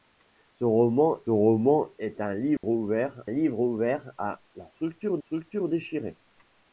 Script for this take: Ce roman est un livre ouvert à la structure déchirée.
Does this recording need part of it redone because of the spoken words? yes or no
yes